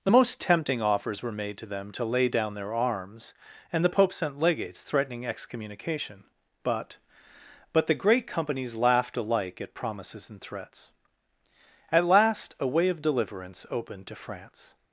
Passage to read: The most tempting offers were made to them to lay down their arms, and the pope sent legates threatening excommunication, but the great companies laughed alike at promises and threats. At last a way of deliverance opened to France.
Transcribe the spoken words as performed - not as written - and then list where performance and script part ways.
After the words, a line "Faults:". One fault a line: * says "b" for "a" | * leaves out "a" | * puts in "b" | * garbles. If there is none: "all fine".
The most tempting offers were made to them to lay down their arms, and the pope sent legates threatening excommunication, but but the great companies laughed alike at promises and threats. At last a way of deliverance opened to France.
Faults:
* puts in "but"